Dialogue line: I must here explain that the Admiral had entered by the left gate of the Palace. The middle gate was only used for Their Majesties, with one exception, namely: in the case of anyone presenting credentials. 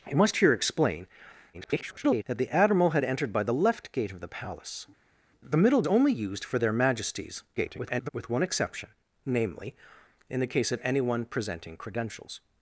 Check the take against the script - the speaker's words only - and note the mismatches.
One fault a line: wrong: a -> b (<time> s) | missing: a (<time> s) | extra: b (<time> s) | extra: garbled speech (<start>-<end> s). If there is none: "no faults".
extra: garbled speech (1.5-2.2 s)
missing: gate was (5.8 s)
extra: garbled speech (7.6-8.1 s)